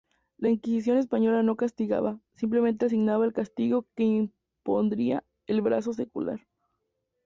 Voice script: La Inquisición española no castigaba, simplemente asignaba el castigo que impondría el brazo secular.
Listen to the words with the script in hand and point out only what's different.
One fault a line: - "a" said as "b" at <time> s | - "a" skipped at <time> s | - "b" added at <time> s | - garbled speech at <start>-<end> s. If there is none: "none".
none